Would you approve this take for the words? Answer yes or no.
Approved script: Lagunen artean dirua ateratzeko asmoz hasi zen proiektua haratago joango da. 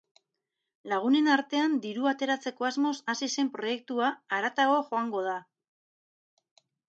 yes